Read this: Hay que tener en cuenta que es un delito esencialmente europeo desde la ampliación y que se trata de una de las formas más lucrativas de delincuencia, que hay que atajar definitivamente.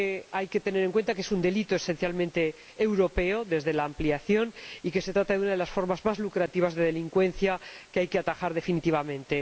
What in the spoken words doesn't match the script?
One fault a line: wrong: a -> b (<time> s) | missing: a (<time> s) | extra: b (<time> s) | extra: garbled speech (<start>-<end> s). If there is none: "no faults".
no faults